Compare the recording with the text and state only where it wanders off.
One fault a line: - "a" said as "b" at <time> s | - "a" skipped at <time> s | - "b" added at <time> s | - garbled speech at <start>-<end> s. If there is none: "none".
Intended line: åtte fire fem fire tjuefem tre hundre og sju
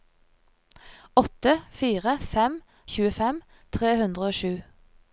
- "fire" skipped at 2.6 s